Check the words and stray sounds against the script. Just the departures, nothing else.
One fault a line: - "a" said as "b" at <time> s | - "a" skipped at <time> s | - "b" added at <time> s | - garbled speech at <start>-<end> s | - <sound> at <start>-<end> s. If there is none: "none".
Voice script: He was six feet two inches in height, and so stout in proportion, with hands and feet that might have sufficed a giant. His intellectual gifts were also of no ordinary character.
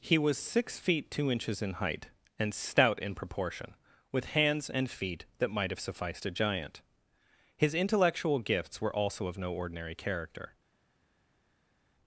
- "so" skipped at 2.5 s